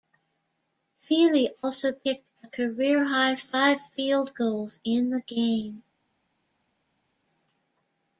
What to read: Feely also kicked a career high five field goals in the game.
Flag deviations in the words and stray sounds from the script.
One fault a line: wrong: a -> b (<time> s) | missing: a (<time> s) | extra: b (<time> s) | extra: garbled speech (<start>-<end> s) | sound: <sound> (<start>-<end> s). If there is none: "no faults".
no faults